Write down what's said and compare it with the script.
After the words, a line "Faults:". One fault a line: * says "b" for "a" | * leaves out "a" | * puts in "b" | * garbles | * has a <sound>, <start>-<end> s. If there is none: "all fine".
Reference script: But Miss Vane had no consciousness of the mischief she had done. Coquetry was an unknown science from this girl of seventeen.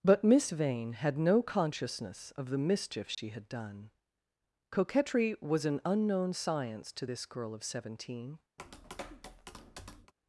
But Miss Vane had no consciousness of the mischief she had done. Coquetry was an unknown science to this girl of seventeen.
Faults:
* has a dropout, 3.1-3.2 s
* says "to" for "from"
* has a tap, 8.6-10.1 s